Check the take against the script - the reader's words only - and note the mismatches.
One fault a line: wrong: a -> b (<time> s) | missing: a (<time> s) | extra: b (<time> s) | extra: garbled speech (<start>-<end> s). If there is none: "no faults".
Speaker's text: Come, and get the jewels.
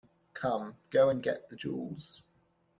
extra: go (0.9 s)